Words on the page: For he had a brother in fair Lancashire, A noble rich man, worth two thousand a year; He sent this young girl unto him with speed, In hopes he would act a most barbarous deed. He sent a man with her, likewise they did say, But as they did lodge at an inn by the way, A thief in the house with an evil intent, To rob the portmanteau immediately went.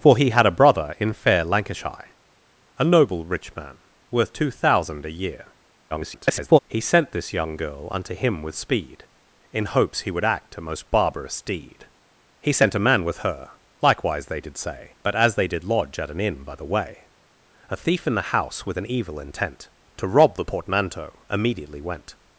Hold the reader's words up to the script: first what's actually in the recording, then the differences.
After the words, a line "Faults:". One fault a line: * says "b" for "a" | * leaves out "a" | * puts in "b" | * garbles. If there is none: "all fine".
For he had a brother in fair Lancashire, A noble rich man, worth two thousand a year; [garbled] He sent this young girl unto him with speed, In hopes he would act a most barbarous deed. He sent a man with her, likewise they did say, But as they did lodge at an inn by the way, A thief in the house with an evil intent, To rob the portmanteau immediately went.
Faults:
* garbles